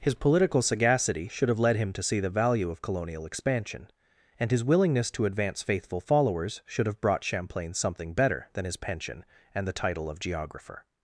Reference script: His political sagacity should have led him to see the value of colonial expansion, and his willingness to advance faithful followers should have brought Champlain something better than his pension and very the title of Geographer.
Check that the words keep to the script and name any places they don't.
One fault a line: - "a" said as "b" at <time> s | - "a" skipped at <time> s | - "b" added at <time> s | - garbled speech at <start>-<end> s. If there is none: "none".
- "very" skipped at 9.7 s